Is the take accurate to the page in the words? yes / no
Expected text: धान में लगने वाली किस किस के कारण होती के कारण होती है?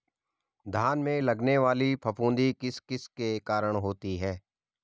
no